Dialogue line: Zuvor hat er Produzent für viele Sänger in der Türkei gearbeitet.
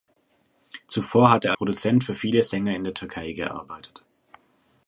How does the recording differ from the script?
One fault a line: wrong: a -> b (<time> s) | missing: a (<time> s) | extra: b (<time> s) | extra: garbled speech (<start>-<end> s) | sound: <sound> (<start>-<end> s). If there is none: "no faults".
no faults